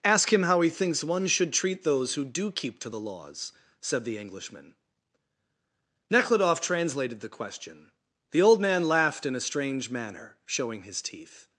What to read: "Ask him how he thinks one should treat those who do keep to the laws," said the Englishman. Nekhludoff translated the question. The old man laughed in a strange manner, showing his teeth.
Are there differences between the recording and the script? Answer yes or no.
no